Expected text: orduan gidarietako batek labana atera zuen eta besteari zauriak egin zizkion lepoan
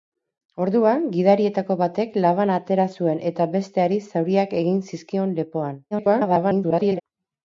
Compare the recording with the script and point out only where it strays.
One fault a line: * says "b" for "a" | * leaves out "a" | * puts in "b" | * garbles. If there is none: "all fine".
* garbles